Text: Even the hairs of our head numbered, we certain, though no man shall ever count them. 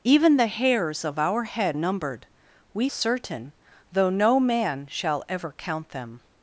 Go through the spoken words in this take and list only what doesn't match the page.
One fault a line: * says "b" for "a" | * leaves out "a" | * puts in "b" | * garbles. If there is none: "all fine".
all fine